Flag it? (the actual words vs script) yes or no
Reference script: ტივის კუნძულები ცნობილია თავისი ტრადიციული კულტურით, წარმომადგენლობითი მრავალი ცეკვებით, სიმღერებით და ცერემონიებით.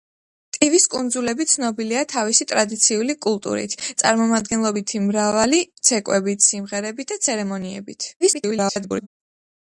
yes